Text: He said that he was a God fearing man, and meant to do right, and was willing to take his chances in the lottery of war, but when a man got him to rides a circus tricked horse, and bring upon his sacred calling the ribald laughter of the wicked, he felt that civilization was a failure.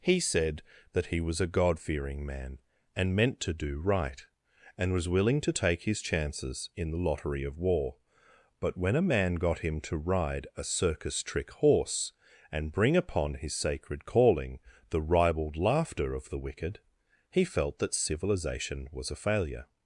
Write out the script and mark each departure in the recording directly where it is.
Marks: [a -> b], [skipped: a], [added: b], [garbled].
He said that he was a God fearing man, and meant to do right, and was willing to take his chances in the lottery of war, but when a man got him to [rides -> ride] a circus [tricked -> trick] horse, and bring upon his sacred calling the ribald laughter of the wicked, he felt that civilization was a failure.